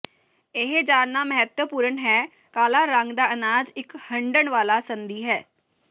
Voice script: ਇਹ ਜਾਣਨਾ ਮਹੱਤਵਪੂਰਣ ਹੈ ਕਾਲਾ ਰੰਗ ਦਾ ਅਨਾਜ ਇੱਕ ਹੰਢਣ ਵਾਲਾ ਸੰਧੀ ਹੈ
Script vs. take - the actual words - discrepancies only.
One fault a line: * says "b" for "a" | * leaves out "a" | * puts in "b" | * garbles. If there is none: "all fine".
all fine